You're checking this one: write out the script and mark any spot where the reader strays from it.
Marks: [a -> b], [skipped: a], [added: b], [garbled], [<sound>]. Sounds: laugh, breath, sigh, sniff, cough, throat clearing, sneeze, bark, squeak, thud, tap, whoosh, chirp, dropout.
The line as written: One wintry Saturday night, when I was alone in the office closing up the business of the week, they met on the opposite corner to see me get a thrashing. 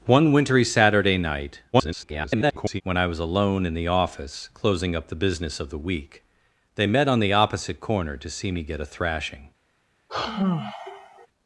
One wintry Saturday night, [garbled] when I was alone in the office closing up the business of the week, they met on the opposite corner to see me get a thrashing. [sigh]